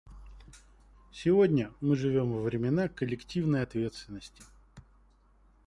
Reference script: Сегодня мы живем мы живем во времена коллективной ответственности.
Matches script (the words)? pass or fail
fail